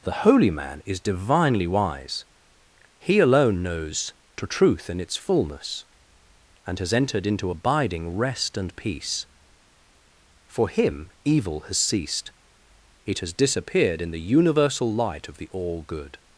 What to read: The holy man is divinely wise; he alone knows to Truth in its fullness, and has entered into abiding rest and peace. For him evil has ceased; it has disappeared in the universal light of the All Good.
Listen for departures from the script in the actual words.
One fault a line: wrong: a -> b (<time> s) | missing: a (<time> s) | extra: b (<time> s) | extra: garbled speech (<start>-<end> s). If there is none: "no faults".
no faults